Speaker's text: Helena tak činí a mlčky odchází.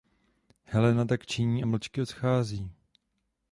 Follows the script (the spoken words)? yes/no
yes